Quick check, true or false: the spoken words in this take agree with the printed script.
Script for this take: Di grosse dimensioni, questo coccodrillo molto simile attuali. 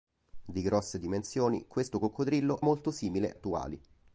true